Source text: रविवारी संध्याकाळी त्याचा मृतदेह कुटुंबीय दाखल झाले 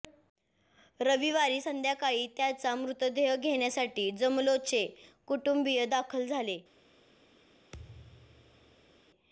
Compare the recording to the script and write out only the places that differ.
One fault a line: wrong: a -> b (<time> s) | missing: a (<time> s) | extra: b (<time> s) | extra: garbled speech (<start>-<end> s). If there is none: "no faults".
extra: घेण्यासाठी जमलोचे (3.3 s)